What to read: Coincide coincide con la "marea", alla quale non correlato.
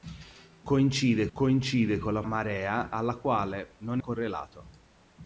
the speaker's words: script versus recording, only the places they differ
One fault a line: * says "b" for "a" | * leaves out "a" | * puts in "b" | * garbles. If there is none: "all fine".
all fine